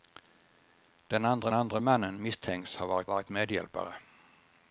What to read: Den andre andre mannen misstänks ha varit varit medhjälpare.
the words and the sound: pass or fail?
pass